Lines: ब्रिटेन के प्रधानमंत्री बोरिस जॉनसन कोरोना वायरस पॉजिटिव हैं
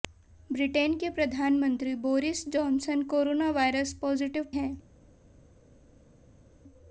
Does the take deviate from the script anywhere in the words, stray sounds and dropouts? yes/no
no